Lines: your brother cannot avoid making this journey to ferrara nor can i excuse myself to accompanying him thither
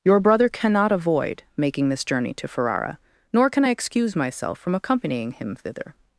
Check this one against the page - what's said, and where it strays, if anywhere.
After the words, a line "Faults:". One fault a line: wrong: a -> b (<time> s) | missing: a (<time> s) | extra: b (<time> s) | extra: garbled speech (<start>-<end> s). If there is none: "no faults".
your brother cannot avoid making this journey to ferrara nor can i excuse myself from accompanying him thither
Faults:
wrong: to -> from (4.6 s)